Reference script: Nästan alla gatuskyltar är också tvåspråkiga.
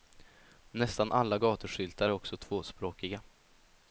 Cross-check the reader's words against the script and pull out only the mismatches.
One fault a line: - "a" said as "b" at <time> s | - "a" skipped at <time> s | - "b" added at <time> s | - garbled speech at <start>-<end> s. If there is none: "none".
none